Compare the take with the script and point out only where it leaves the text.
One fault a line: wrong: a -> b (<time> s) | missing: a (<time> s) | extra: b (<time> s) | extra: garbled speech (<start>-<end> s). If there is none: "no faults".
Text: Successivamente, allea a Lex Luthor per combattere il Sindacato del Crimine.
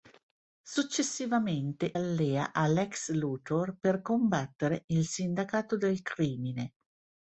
no faults